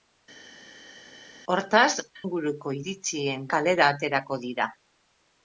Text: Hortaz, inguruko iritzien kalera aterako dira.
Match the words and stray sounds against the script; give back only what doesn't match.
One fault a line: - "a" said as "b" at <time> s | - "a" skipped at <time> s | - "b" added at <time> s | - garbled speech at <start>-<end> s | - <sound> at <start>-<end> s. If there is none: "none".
none